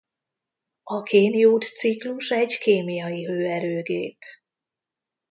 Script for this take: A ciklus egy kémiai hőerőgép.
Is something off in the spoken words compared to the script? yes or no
yes